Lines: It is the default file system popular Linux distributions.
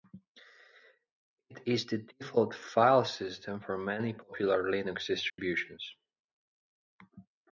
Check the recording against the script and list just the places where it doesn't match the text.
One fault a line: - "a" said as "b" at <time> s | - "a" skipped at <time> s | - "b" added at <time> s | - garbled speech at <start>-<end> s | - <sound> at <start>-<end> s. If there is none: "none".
- "for many" added at 3.6 s
- dropout at 5.3-5.4 s